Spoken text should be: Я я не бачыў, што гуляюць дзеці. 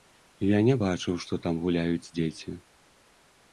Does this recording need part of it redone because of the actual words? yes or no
yes